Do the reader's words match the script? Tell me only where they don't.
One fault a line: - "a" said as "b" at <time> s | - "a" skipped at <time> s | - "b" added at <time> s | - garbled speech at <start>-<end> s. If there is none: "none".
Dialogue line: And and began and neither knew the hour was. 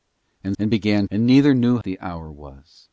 none